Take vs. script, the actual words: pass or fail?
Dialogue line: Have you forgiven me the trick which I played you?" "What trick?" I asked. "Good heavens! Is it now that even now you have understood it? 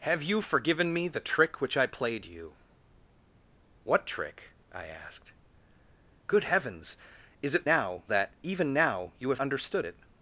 pass